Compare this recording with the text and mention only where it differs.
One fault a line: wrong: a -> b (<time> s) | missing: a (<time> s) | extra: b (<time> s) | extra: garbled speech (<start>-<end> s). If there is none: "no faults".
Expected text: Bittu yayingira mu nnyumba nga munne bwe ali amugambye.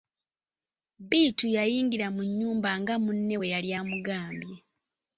wrong: ali -> yali (3.5 s)